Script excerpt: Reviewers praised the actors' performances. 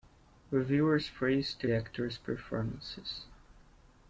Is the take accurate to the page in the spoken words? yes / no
yes